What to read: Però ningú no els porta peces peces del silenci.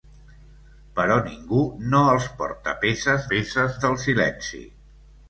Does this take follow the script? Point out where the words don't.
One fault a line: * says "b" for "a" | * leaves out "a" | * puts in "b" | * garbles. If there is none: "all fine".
all fine